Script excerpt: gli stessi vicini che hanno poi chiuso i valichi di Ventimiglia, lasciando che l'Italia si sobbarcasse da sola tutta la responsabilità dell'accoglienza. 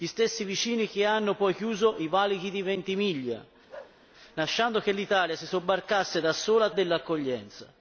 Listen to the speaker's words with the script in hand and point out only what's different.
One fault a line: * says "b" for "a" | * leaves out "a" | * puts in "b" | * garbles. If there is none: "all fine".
* leaves out "tutta la responsabilità"